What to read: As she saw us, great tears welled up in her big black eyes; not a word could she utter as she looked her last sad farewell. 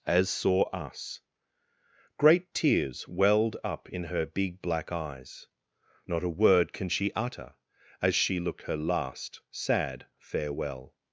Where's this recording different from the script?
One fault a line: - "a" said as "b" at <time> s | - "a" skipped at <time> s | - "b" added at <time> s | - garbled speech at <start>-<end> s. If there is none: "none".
- "she" skipped at 0.3 s
- "could" said as "can" at 6.7 s